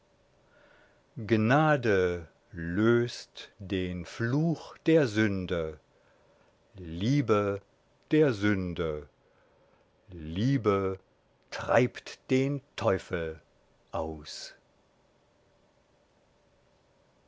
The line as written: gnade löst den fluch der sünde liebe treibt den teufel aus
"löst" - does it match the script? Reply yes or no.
yes